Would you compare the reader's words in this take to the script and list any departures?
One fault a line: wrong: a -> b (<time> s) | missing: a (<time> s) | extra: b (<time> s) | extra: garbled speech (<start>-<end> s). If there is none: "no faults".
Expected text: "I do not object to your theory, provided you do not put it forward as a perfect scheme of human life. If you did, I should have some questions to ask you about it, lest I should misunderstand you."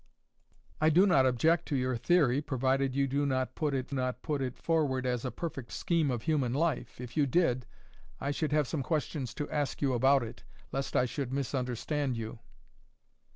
extra: not put it (3.9 s)